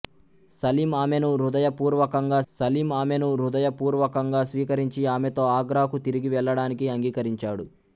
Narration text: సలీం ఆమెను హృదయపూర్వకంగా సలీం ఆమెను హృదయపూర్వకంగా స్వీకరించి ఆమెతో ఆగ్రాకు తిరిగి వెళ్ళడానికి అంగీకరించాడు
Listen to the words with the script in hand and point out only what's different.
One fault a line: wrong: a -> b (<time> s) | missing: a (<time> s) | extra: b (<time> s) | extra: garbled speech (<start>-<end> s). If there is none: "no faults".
no faults